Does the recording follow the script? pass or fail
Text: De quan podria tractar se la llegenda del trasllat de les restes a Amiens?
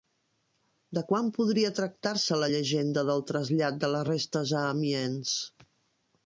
pass